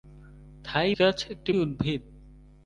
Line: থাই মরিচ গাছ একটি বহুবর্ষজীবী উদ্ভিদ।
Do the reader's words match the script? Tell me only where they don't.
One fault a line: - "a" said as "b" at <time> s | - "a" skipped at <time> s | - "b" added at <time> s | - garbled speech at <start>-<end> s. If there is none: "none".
- "মরিচ" skipped at 0.9 s
- "বহুবর্ষজীবী" skipped at 1.5 s